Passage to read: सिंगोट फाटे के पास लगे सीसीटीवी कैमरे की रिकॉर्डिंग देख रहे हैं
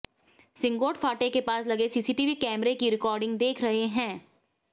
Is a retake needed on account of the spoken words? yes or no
no